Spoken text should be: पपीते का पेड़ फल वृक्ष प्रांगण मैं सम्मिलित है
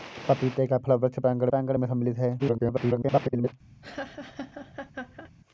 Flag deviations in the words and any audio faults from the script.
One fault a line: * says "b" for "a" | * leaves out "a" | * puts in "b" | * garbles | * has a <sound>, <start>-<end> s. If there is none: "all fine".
* leaves out "पेड़"
* puts in "प्रांगण"
* garbles
* has a laugh, 3.8-5.3 s